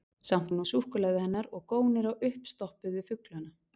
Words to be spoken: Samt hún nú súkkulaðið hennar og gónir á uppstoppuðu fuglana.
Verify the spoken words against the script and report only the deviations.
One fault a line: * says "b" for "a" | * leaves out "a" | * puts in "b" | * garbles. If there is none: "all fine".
all fine